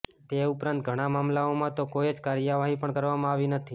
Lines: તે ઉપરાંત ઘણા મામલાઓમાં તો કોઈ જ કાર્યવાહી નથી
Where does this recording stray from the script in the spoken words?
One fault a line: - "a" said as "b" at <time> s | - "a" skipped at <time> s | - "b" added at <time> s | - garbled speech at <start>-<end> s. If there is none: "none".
- "પણ કરવામાં આવી" added at 2.8 s